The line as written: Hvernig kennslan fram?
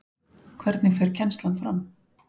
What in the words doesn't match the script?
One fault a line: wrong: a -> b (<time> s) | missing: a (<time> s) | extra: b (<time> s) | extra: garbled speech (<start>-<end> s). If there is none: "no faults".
extra: fer (1.0 s)